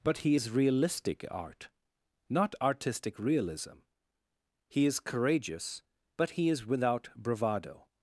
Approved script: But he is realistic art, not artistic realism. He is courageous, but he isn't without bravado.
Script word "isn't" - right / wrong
wrong